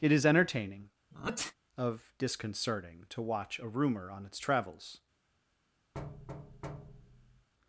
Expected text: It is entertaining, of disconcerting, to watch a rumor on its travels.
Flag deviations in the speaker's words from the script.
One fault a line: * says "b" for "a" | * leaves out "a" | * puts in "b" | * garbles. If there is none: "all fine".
all fine